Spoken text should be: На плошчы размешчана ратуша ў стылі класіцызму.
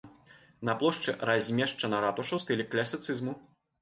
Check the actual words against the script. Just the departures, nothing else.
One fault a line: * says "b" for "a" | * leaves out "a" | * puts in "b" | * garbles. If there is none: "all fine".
all fine